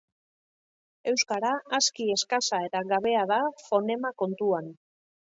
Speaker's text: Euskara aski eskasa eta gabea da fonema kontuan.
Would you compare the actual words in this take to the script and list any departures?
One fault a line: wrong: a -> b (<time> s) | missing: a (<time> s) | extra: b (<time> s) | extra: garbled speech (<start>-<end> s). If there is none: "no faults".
no faults